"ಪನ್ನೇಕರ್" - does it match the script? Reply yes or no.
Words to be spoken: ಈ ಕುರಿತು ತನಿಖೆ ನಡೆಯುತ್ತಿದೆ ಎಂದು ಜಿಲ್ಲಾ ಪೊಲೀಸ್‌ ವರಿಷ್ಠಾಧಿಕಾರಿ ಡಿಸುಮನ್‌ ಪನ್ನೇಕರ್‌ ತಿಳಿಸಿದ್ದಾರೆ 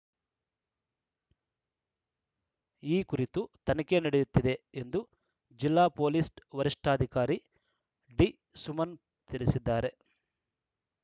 no